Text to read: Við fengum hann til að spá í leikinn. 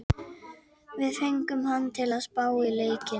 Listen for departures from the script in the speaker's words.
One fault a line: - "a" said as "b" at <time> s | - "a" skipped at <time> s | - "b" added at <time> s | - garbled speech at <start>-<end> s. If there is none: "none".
none